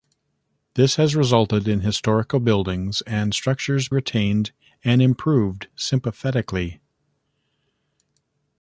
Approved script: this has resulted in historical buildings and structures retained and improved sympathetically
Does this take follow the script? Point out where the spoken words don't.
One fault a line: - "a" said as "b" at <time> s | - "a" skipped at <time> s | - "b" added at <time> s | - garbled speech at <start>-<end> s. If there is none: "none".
none